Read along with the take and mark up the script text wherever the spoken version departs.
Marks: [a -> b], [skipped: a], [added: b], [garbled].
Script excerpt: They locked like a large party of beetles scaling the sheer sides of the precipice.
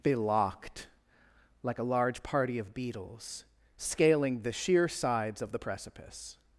They locked like a large party of beetles scaling the sheer sides of the precipice.